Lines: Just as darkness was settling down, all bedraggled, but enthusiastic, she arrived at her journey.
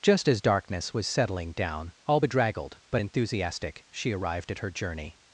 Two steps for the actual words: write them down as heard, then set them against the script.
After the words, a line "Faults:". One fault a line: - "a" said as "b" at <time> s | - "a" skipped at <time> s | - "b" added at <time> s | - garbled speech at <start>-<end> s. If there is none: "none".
Just as darkness was settling down, all bedraggled, but enthusiastic, she arrived at her journey.
Faults:
none